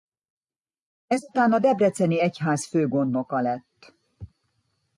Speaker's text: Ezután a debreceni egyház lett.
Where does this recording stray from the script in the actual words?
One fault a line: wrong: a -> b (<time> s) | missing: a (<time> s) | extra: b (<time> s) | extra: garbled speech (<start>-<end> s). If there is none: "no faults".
extra: főgondnoka (2.7 s)